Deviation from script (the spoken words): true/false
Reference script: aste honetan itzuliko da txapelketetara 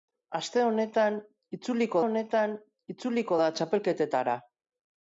true